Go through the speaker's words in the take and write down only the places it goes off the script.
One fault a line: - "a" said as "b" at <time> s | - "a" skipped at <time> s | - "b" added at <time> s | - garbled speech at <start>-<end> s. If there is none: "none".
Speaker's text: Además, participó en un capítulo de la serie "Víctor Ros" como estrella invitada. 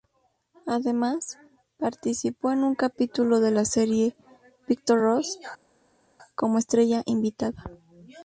none